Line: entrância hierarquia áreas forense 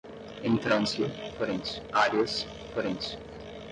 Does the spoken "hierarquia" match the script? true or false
false